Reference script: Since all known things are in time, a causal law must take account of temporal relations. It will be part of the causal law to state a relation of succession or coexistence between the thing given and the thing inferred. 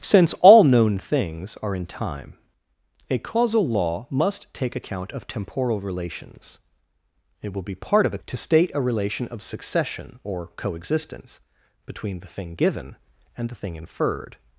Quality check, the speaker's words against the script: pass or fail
fail